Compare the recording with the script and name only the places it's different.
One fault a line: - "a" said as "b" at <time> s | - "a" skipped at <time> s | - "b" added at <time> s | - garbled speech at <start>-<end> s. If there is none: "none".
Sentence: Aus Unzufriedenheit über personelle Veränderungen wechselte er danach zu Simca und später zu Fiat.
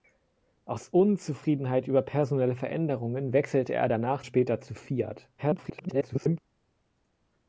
- "zu Simca und" skipped at 4.2 s
- garbled speech at 5.4-6.4 s